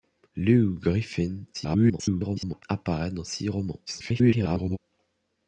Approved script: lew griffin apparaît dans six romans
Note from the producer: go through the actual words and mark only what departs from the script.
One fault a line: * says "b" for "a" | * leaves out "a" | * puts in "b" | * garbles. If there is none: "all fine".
* garbles
* garbles